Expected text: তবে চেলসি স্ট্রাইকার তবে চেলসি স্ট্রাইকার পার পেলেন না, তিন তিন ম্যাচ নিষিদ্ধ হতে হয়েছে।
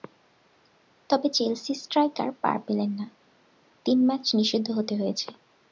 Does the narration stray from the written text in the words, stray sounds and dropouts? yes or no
yes